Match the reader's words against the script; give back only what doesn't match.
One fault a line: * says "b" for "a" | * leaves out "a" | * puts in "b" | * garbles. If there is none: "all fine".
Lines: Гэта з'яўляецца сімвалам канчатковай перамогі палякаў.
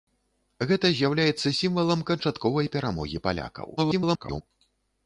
* garbles